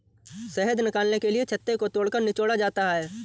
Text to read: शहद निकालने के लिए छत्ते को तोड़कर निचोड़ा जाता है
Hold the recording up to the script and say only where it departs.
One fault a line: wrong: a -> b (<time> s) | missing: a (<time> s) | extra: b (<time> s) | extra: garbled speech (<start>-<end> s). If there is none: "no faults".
no faults